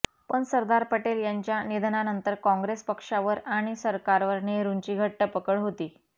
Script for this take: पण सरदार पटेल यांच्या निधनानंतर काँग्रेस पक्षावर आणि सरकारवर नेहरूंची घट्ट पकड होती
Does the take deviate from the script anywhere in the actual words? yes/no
no